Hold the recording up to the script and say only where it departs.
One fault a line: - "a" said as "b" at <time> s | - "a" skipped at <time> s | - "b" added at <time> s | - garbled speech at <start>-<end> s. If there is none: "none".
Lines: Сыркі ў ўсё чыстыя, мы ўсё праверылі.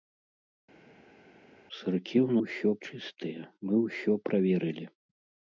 none